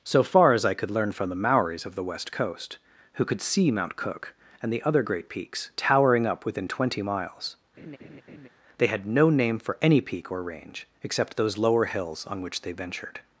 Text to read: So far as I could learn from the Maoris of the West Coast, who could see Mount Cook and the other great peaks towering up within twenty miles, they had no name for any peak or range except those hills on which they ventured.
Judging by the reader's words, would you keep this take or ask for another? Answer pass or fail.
fail